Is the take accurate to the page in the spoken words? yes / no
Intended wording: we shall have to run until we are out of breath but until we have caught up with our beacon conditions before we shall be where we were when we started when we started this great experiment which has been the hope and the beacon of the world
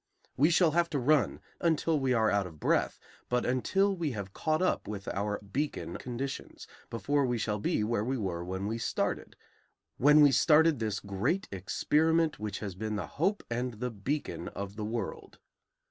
yes